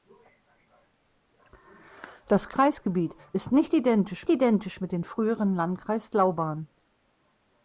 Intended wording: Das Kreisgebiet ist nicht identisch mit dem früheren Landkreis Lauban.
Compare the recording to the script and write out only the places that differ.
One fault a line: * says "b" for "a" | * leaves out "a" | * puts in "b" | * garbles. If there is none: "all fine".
* puts in "identisch"